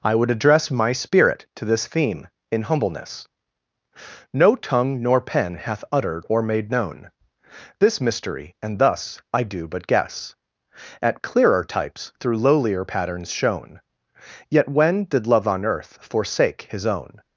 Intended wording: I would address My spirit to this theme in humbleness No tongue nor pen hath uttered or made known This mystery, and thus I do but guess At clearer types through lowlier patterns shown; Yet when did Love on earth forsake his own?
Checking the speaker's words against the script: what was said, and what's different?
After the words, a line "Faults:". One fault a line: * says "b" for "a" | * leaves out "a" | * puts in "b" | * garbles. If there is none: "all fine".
I would address My spirit to this theme in humbleness No tongue nor pen hath uttered or made known This mystery, and thus I do but guess At clearer types through lowlier patterns shown; Yet when did Love on earth forsake his own?
Faults:
all fine